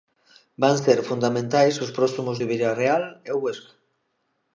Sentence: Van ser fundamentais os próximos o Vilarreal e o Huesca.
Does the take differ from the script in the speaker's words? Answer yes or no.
no